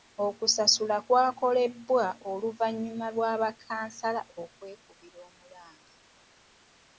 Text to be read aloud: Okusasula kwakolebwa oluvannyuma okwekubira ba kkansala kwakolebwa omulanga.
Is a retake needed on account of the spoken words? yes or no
yes